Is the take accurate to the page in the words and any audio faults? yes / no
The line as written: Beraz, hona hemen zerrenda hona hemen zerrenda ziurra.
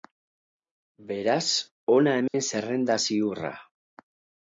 no